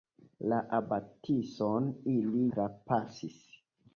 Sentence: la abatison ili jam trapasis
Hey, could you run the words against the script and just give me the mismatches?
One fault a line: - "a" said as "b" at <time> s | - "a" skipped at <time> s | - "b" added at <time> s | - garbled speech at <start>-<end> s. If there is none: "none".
- "jam" skipped at 2.4 s